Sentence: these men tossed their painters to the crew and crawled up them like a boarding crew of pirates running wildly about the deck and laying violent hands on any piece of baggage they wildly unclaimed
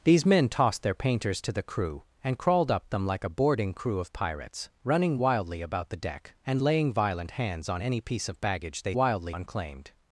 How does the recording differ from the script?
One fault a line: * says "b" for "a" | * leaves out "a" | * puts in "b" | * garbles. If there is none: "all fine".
all fine